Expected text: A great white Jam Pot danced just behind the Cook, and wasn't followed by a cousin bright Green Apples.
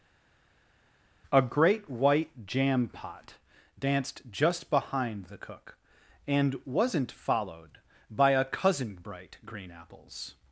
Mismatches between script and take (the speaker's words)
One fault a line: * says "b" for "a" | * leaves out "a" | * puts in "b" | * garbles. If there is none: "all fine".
all fine